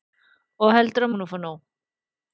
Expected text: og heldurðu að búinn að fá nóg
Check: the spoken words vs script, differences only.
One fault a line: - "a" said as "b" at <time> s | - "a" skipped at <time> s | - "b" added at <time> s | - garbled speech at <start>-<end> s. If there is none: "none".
none